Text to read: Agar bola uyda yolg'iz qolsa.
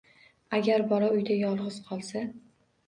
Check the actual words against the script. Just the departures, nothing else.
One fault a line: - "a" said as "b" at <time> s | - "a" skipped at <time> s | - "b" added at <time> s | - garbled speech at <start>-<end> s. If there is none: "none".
none